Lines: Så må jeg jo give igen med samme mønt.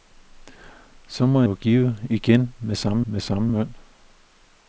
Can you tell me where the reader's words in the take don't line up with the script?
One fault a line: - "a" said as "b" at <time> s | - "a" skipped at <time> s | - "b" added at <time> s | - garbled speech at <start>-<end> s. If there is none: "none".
- "jeg" skipped at 1.4 s
- "med samme" added at 3.0 s